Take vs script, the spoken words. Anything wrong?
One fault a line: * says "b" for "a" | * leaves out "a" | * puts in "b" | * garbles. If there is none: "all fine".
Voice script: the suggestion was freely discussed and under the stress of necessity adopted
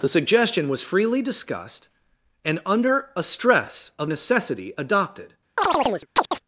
* says "a" for "the"